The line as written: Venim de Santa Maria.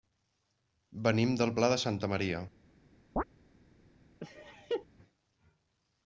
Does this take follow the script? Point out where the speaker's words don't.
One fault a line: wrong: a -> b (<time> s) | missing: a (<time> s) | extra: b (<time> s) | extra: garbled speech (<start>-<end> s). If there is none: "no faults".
extra: del Pla (1.4 s)